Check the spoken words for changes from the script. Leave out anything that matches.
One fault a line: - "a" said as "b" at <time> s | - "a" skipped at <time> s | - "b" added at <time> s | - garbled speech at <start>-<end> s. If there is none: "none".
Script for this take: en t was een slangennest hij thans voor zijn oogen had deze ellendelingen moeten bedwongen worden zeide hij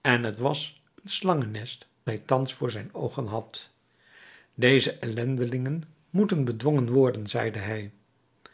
none